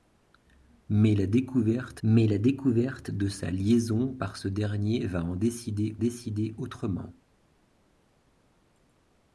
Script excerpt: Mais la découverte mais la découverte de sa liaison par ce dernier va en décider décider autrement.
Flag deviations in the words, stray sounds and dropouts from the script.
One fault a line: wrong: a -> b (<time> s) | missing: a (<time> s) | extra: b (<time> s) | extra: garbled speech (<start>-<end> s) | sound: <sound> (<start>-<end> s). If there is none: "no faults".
no faults